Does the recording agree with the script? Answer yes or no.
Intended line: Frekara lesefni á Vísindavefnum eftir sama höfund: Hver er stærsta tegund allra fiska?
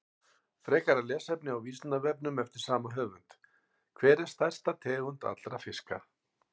yes